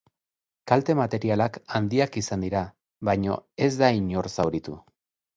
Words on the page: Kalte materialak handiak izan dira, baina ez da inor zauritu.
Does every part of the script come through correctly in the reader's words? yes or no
yes